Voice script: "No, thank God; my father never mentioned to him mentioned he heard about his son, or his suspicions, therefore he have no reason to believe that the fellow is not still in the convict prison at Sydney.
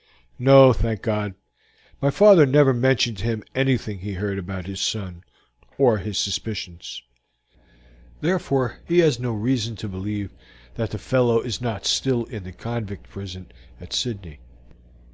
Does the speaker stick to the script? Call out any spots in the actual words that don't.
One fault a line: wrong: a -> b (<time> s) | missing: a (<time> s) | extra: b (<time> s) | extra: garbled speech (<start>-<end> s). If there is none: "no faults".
wrong: mentioned -> anything (3.5 s)
wrong: have -> has (9.0 s)